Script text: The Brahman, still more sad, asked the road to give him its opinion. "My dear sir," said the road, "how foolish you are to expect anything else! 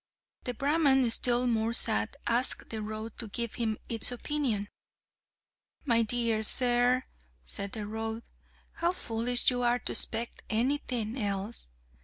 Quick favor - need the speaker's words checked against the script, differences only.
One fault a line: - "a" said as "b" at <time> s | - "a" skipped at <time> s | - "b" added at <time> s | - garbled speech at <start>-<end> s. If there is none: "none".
none